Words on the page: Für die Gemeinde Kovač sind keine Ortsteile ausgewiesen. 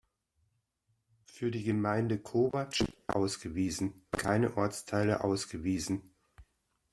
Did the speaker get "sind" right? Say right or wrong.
wrong